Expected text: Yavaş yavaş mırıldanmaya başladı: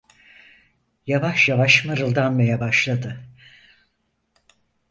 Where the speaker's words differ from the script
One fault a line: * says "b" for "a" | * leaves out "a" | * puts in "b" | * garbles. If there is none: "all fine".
all fine